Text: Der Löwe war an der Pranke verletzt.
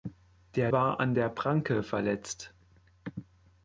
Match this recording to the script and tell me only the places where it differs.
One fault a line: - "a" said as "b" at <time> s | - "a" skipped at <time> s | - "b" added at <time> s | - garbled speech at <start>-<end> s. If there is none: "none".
- "Löwe" skipped at 0.7 s